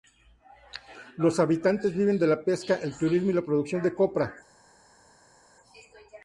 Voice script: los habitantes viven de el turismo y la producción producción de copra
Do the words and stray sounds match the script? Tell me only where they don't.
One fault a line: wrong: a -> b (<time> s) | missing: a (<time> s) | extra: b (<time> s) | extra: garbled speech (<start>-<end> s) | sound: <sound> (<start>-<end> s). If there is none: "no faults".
extra: la pesca (2.2 s)
missing: producción (3.8 s)